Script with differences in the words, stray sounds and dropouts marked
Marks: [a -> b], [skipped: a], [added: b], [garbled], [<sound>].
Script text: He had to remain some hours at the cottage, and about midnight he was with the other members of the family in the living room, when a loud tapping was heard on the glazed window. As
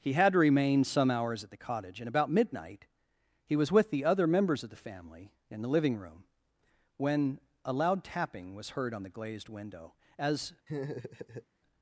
He had to remain some hours at the cottage, and about midnight he was with the other members of the family in the living room, when a loud tapping was heard on the glazed window. As [laugh]